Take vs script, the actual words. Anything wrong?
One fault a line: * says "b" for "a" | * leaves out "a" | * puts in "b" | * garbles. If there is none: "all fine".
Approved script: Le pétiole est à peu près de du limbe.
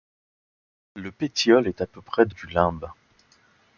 all fine